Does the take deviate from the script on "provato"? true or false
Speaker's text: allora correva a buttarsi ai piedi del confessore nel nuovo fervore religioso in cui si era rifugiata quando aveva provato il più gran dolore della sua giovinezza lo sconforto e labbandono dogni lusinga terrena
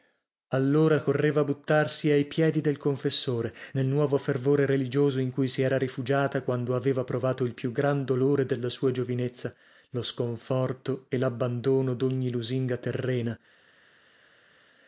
false